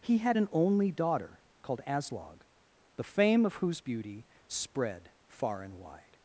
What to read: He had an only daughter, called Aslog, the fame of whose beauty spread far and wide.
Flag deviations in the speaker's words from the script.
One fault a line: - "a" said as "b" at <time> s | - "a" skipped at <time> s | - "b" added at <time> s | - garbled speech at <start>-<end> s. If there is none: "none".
none